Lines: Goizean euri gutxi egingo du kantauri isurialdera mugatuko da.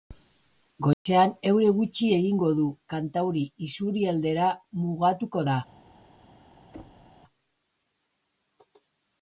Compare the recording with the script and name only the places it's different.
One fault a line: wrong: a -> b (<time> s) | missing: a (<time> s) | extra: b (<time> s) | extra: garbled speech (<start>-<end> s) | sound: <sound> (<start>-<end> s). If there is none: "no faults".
sound: dropout (0.9-1.1 s)
sound: thud (6.7-7.1 s)